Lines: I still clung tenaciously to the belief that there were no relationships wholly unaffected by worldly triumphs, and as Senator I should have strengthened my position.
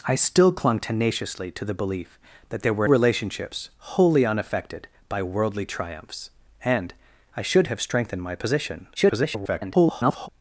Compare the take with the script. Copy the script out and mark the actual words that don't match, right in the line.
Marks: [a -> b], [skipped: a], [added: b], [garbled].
I still clung tenaciously to the belief that there were [skipped: no] relationships wholly unaffected by worldly triumphs, and [skipped: as Senator] I should have strengthened my position. [garbled]